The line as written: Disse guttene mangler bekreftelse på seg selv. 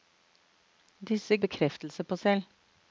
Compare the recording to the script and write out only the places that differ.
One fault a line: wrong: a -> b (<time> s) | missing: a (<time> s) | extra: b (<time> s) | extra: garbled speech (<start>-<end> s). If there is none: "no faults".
missing: guttene mangler (1.4 s)
missing: seg (2.2 s)